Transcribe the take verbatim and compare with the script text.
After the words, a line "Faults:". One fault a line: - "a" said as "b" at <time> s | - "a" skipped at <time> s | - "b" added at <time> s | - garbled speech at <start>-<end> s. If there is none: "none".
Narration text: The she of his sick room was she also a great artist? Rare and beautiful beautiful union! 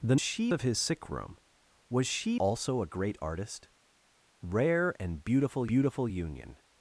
The she of his sick room was she also a great artist? Rare and beautiful beautiful union!
Faults:
none